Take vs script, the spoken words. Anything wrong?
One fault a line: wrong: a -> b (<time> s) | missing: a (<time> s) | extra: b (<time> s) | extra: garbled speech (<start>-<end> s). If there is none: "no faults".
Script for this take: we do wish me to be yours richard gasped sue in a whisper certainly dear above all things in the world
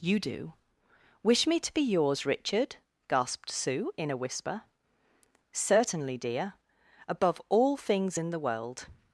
wrong: we -> you (0.0 s)